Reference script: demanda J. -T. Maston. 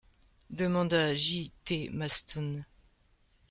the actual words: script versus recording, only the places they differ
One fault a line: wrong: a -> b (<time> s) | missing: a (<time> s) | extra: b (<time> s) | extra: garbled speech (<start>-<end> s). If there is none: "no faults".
no faults